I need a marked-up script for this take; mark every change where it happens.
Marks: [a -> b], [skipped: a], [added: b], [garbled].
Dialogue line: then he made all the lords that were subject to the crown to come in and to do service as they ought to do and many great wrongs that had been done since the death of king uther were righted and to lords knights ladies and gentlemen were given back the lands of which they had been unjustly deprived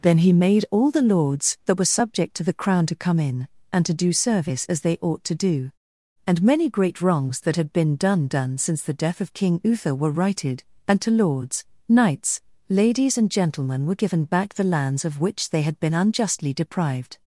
then he made all the lords that were subject to the crown to come in and to do service as they ought to do and many great wrongs that had been done [added: done] since the death of king uther were righted and to lords knights ladies and gentlemen were given back the lands of which they had been unjustly deprived